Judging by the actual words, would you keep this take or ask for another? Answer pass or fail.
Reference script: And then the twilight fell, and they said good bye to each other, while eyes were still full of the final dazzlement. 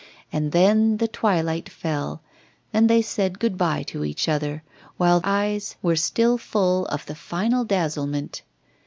pass